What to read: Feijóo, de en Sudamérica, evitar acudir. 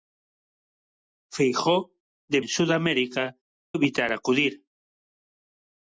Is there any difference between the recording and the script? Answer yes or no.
no